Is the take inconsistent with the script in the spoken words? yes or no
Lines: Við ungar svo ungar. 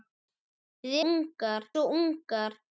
no